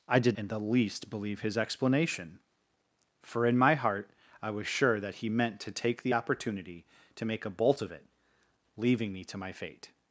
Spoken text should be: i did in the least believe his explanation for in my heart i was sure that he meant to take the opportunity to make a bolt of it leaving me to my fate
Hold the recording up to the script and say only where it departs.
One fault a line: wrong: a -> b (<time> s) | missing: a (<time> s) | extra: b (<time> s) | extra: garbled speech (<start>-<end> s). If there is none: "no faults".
no faults